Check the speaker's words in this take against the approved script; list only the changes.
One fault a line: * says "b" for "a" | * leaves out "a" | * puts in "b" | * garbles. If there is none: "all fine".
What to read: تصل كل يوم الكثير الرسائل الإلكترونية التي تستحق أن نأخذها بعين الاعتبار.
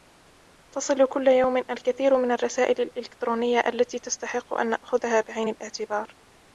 * puts in "من"